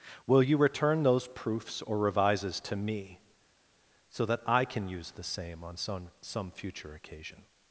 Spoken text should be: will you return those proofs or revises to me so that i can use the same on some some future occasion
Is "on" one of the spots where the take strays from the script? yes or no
no